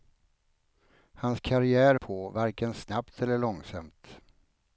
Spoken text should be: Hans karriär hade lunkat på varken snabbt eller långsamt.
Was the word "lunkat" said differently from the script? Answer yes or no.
yes